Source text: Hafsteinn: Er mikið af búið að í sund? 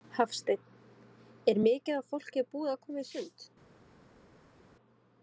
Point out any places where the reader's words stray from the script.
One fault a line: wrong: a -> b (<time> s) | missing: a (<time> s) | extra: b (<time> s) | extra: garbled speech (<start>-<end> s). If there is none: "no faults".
extra: fólki (2.1 s)
extra: koma (2.9 s)